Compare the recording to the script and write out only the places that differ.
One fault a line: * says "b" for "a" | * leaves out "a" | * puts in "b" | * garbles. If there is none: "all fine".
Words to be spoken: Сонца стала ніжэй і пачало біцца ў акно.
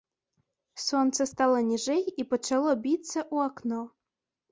all fine